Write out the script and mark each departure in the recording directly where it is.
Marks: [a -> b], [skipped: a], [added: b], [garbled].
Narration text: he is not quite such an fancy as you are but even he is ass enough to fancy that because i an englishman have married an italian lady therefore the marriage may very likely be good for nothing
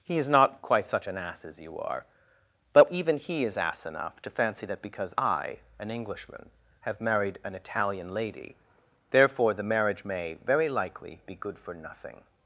he is not quite such an [fancy -> ass] as you are but even he is ass enough to fancy that because i an englishman have married an italian lady therefore the marriage may very likely be good for nothing